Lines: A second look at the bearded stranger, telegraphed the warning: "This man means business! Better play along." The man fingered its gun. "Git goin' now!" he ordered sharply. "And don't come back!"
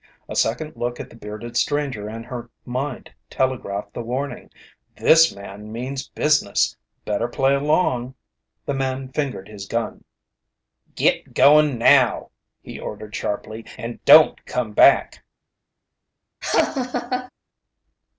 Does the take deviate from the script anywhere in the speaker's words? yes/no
yes